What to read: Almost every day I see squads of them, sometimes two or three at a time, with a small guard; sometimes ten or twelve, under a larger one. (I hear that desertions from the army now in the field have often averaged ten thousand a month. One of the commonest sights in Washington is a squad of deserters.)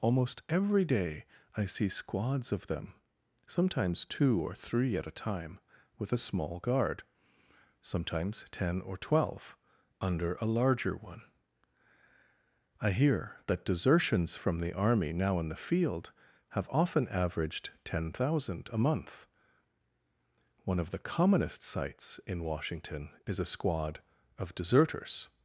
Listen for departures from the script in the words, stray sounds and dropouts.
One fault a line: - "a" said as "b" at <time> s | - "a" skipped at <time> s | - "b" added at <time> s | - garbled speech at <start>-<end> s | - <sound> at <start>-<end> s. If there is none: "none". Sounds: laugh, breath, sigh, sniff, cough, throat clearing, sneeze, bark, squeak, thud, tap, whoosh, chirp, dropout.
none